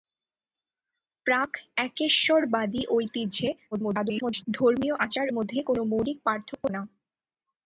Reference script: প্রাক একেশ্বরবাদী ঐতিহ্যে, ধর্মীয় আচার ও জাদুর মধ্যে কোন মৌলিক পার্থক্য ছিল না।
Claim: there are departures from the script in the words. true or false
true